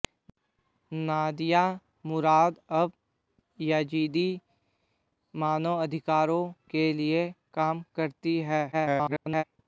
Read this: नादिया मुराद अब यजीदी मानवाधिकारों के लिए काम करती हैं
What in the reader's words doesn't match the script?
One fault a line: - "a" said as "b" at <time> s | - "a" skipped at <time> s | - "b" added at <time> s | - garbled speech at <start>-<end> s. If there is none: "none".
- garbled speech at 8.7-9.4 s